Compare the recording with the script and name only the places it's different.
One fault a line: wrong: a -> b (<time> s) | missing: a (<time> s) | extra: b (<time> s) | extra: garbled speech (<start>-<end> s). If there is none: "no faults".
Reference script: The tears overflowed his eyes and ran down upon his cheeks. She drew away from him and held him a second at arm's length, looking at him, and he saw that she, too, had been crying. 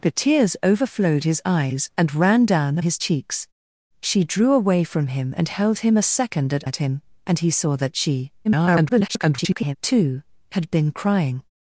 missing: upon (2.8 s)
missing: arm's length looking (6.6 s)
extra: garbled speech (8.4-9.8 s)